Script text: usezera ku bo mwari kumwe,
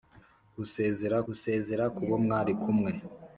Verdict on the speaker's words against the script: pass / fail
fail